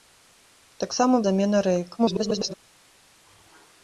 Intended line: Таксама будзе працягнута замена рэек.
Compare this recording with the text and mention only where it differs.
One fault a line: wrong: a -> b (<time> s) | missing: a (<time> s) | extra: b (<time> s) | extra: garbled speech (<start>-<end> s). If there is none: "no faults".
missing: будзе працягнута (1.2 s)
extra: garbled speech (2.0-2.5 s)